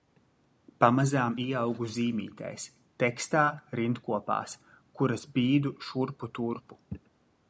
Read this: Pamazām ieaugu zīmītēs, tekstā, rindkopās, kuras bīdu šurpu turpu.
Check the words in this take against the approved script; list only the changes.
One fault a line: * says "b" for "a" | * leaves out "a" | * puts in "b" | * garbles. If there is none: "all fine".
all fine